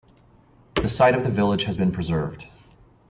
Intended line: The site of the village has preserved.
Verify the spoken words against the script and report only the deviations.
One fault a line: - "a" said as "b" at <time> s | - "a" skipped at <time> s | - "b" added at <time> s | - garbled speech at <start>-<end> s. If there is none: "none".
- "been" added at 1.7 s